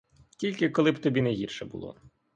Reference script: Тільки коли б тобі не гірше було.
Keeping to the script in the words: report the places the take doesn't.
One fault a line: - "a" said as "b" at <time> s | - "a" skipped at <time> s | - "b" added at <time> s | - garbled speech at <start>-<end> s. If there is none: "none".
none